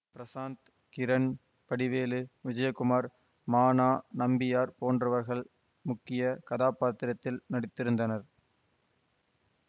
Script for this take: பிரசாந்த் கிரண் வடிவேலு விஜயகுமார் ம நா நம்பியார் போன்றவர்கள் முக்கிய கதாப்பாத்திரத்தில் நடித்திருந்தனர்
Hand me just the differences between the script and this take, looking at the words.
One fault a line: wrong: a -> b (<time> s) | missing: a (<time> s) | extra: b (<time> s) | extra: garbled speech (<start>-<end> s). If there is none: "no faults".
no faults